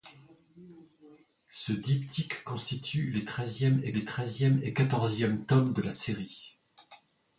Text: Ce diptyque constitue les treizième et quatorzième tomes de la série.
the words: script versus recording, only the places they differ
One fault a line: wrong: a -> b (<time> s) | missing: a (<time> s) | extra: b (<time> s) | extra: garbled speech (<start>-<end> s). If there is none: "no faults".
extra: les treizième et (3.9 s)